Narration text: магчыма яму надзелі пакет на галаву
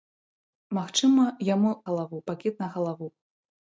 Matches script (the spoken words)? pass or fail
fail